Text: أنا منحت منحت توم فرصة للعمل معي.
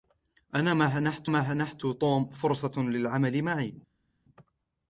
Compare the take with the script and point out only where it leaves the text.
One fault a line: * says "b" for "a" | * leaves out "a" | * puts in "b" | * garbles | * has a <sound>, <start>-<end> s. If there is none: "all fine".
all fine